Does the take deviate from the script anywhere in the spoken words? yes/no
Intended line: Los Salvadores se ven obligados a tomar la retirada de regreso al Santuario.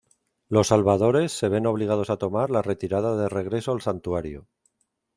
no